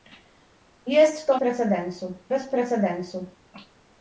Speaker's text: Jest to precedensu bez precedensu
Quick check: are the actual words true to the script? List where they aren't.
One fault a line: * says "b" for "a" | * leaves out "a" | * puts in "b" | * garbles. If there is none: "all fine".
all fine